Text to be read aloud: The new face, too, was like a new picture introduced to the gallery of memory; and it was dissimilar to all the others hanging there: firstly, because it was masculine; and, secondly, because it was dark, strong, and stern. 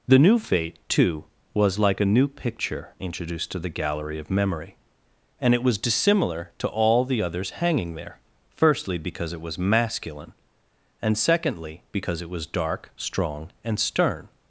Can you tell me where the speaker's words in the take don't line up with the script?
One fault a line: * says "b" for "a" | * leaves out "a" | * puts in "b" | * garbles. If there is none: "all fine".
* says "fate" for "face"